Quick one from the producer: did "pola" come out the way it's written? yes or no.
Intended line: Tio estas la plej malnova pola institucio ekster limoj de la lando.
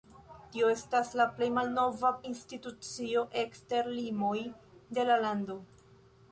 no